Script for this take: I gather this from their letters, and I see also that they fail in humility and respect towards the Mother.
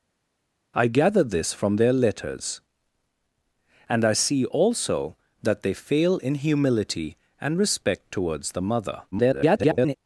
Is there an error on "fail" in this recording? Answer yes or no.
no